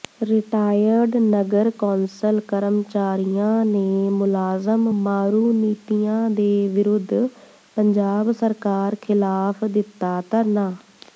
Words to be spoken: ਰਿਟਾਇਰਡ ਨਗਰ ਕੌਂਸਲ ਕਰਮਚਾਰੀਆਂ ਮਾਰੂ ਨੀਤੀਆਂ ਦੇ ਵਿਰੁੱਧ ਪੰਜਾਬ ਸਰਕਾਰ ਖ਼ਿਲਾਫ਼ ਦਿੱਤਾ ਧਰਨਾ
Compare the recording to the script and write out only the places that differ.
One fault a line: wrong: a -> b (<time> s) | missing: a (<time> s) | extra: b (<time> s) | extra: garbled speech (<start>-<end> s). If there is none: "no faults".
extra: ਨੇ ਮੁਲਾਜ਼ਮ (3.6 s)